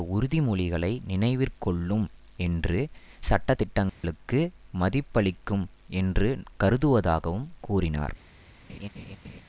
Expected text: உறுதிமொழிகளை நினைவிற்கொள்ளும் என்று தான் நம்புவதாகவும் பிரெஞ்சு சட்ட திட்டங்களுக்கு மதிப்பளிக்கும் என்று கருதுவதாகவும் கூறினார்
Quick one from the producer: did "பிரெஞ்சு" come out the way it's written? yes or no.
no